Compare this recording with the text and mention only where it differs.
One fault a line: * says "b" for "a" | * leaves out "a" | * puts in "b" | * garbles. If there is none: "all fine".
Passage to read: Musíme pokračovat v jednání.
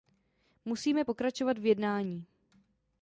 all fine